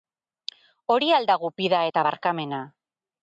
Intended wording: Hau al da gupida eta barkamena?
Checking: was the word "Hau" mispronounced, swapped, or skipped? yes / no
yes